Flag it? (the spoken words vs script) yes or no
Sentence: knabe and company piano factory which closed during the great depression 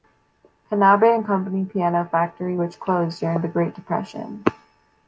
no